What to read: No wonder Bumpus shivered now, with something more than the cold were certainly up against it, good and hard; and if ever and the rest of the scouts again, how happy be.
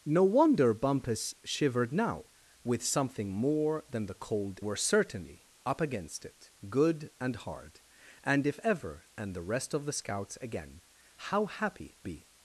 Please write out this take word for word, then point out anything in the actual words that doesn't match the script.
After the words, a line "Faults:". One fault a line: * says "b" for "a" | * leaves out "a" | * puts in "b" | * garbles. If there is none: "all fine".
No wonder Bumpus shivered now, with something more than the cold were certainly up against it, good and hard; and if ever and the rest of the scouts again, how happy be.
Faults:
all fine